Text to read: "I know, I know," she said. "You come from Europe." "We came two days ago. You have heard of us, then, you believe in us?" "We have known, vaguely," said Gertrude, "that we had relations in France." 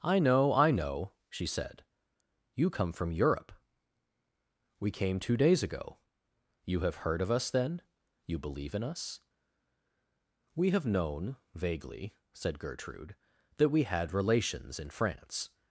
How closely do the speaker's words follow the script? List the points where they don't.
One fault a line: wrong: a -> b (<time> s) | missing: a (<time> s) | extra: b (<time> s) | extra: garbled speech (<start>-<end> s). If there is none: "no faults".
no faults